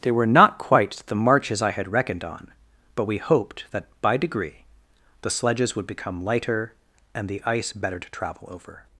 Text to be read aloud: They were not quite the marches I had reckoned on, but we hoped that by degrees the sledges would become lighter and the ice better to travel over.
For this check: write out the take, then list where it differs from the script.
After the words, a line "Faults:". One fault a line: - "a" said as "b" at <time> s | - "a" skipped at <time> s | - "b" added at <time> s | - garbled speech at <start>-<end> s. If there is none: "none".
They were not quite the marches I had reckoned on, but we hoped that by degree the sledges would become lighter and the ice better to travel over.
Faults:
- "degrees" said as "degree" at 4.2 s